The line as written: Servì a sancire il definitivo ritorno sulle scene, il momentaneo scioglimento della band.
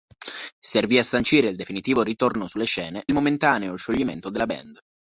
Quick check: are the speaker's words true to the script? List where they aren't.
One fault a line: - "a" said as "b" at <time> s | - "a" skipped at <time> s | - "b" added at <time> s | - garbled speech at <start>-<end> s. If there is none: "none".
none